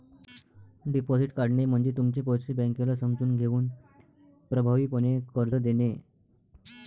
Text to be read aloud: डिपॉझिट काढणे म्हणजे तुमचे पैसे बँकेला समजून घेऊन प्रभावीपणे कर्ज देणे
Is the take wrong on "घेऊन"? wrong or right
right